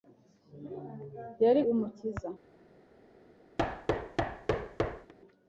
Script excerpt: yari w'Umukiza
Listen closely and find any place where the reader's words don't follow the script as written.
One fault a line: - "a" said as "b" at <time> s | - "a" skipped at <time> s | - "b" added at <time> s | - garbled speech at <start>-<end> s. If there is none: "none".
none